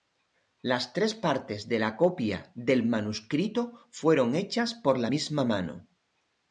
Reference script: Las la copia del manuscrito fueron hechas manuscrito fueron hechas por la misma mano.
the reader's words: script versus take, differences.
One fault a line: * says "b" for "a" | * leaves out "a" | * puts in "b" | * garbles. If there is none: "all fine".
* puts in "tres partes de"
* leaves out "manuscrito fueron hechas"